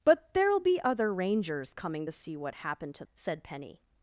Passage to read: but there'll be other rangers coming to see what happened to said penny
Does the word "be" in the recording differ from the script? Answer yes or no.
no